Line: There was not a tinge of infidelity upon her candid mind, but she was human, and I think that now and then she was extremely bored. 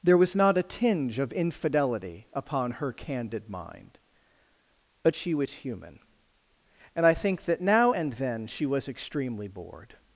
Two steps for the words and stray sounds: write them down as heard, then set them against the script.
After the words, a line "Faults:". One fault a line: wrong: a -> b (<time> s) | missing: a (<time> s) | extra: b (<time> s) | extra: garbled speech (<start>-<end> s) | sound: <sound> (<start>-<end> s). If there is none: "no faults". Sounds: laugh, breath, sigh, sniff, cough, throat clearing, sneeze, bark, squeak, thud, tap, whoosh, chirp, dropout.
There was not a tinge of infidelity upon her candid mind, but she was human, and I think that now and then she was extremely bored.
Faults:
no faults